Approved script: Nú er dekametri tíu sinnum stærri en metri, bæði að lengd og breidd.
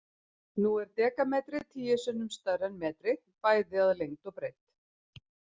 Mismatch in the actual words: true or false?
false